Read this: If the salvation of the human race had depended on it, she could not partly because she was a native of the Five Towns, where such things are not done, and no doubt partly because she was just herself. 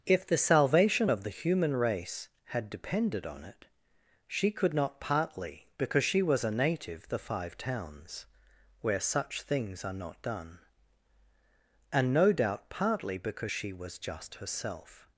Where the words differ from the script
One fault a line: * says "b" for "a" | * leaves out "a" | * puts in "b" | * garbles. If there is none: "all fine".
* leaves out "of"